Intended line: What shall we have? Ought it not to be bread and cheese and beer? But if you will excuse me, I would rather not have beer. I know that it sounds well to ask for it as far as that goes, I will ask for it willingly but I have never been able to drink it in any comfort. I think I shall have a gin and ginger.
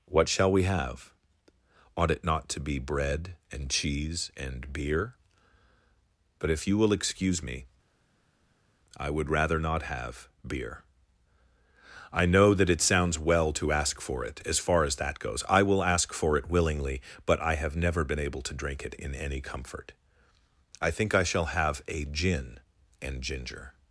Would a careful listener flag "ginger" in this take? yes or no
no